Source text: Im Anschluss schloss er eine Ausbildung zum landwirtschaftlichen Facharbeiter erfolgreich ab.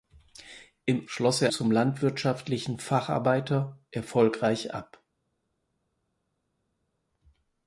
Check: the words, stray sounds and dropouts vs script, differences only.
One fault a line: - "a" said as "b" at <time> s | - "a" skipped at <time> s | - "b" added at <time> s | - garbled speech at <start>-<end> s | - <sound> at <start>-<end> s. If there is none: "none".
- "Anschluss" skipped at 1.1 s
- "eine Ausbildung" skipped at 1.5 s